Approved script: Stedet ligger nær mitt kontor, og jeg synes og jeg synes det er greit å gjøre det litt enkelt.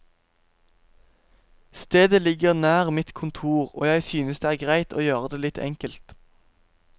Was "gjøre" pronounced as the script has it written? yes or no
yes